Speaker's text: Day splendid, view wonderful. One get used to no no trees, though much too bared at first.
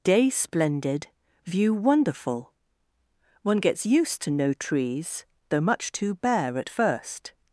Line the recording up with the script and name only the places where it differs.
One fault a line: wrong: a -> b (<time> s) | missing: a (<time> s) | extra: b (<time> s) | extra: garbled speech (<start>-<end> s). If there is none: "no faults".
wrong: get -> gets (3.6 s)
missing: no (4.5 s)
wrong: bared -> bare (6.1 s)